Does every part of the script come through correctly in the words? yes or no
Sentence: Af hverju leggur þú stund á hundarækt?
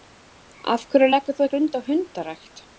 yes